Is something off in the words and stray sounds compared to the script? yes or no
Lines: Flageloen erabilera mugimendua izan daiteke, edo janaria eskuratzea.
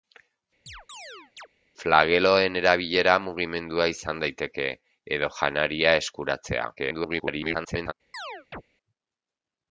yes